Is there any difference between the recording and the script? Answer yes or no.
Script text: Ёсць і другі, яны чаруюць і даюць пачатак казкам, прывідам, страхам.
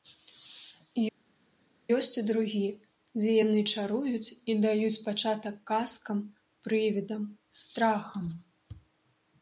yes